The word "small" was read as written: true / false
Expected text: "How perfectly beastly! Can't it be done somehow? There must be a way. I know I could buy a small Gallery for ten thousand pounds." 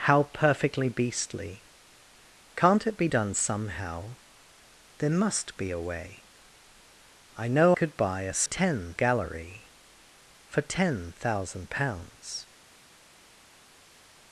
false